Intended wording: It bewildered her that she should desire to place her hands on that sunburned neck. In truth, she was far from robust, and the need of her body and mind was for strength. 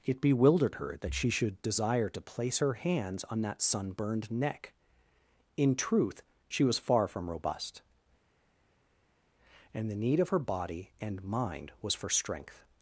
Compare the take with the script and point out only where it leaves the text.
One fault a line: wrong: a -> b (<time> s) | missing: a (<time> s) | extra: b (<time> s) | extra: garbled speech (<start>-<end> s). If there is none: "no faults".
no faults